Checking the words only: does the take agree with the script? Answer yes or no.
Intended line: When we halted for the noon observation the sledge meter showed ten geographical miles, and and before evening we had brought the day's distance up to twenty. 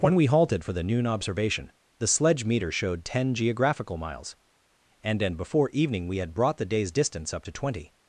yes